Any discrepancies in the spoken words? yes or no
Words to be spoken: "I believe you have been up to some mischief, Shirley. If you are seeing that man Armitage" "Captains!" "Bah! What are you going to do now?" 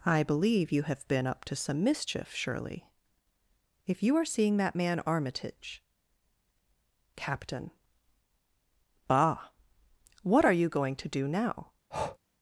yes